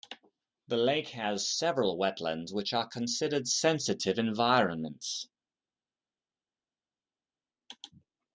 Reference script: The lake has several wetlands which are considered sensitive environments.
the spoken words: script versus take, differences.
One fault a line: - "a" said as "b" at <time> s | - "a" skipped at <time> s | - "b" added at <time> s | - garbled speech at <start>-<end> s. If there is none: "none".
none